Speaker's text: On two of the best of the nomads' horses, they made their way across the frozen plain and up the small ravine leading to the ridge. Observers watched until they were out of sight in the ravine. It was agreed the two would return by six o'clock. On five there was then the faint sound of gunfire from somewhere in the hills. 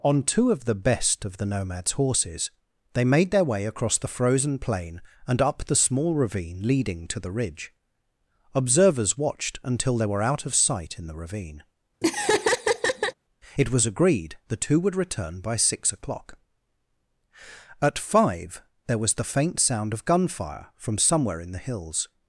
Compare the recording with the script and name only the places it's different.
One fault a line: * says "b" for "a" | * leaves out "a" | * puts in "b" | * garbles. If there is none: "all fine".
* says "At" for "On"
* leaves out "then"